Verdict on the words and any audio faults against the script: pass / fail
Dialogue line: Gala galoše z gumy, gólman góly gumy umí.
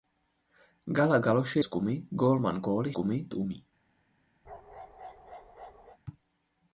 fail